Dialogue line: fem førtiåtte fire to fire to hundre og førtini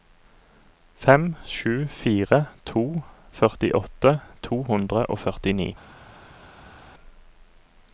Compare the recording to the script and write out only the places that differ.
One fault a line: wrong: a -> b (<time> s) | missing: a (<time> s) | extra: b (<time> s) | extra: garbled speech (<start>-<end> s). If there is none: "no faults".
wrong: førtiåtte -> sju (1.6 s)
wrong: fire -> førtiåtte (3.4 s)